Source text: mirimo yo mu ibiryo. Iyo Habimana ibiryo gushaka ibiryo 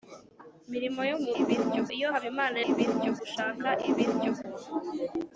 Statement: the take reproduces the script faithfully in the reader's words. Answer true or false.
true